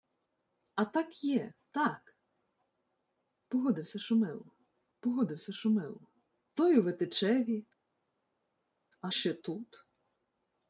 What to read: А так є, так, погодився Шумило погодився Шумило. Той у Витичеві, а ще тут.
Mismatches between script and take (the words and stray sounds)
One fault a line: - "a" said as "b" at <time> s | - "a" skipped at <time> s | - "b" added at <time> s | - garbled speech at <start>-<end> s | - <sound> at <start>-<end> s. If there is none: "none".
none